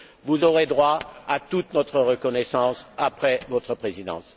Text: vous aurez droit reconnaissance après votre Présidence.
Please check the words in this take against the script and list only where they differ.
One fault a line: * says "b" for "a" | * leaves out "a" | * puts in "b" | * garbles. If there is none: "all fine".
* puts in "à toute notre"